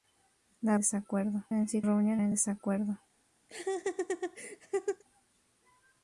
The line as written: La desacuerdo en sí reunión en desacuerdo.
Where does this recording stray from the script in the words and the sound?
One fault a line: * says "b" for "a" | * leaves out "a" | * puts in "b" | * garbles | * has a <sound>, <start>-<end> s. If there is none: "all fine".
* has a laugh, 3.5-5.0 s